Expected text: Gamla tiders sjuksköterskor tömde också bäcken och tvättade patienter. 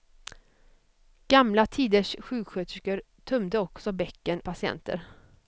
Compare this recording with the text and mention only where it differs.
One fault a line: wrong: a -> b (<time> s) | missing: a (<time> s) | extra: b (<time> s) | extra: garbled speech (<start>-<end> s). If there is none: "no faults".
missing: och tvättade (4.4 s)